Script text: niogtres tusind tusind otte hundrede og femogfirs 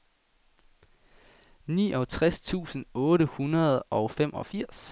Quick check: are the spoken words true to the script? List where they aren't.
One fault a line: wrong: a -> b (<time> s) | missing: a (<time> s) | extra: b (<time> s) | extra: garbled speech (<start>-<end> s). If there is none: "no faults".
missing: tusind (2.9 s)